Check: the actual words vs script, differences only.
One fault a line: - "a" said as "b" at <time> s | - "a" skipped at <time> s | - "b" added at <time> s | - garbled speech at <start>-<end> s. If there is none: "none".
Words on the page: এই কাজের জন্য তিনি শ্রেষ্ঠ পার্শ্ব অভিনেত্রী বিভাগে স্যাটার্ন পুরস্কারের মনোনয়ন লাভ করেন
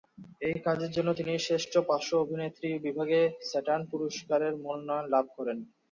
none